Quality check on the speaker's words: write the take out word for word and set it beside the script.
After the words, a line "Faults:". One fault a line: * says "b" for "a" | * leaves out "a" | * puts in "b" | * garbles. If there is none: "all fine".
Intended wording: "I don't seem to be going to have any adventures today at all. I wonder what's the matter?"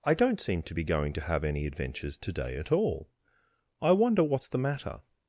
"I don't seem to be going to have any adventures today at all. I wonder what's the matter?"
Faults:
all fine